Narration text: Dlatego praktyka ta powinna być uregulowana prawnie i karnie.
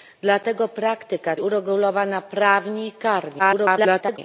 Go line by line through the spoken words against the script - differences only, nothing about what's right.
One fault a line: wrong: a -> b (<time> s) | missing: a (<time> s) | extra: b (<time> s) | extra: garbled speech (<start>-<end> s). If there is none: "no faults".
missing: ta powinna być (1.4 s)
extra: garbled speech (3.4-4.2 s)